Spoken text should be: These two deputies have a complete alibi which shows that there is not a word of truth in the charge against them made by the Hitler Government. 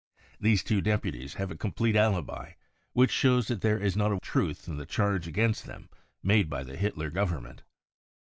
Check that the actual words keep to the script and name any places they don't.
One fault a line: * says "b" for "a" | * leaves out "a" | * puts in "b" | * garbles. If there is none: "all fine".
* leaves out "word of"